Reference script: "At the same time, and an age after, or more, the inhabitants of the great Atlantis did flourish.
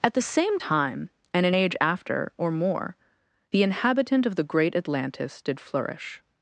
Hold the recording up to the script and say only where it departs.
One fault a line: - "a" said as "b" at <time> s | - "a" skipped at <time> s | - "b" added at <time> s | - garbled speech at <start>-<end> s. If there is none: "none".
- "inhabitants" said as "inhabitant" at 3.6 s